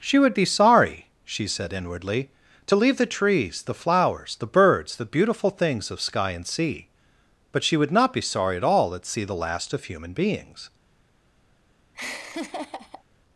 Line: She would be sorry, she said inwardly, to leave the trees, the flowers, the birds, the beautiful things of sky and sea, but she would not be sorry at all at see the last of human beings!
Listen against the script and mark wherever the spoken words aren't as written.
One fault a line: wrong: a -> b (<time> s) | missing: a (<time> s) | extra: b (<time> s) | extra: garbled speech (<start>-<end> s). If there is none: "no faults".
no faults